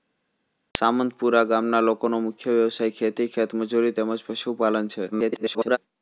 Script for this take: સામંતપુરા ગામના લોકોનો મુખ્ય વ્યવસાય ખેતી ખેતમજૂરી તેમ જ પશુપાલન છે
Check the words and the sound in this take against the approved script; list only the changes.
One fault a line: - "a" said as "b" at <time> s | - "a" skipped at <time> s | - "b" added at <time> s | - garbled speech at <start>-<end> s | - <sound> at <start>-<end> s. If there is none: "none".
- garbled speech at 5.1-5.8 s